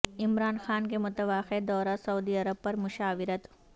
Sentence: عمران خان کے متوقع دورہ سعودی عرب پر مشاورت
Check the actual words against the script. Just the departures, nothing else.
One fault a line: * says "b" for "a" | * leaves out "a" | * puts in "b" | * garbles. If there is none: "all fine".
all fine